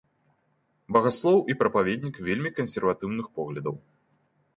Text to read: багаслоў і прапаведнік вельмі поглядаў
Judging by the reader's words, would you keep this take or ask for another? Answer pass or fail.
fail